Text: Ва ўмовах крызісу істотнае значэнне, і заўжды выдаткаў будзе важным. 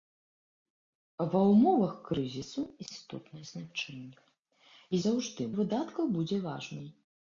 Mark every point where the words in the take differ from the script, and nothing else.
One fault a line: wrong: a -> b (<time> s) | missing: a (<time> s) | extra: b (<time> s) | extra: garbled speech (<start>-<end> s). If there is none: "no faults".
no faults